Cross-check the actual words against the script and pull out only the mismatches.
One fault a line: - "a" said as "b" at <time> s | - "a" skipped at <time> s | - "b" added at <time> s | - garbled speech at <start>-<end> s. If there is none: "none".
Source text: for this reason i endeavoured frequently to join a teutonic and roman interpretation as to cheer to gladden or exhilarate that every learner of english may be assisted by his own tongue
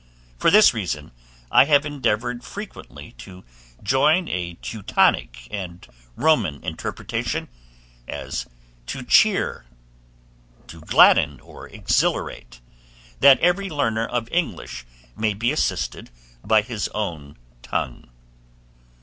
- "have" added at 1.6 s